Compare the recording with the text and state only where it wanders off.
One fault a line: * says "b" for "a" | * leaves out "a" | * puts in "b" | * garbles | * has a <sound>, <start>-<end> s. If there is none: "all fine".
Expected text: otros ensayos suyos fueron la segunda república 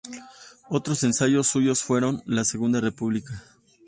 all fine